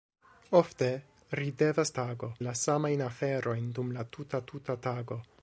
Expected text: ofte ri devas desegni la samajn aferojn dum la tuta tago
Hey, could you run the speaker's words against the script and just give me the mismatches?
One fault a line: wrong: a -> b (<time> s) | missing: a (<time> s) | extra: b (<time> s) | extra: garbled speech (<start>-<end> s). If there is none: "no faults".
wrong: desegni -> tago (2.0 s)
extra: tuta (4.5 s)